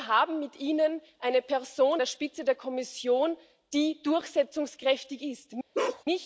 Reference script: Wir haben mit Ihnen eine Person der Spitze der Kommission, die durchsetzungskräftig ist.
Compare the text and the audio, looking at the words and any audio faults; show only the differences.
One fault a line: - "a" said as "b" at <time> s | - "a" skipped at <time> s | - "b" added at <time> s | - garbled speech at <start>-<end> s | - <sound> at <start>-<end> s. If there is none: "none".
- bark at 5.7-6.0 s